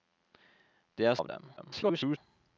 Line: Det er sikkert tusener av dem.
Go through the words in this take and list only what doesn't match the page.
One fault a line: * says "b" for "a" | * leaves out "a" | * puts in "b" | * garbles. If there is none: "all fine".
* leaves out "sikkert tusener"
* garbles